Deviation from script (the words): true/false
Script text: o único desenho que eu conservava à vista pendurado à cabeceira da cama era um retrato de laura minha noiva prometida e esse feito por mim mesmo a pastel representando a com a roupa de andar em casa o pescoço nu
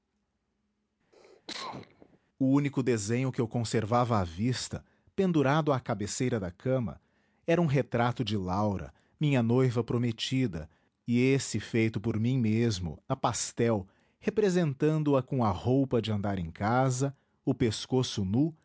false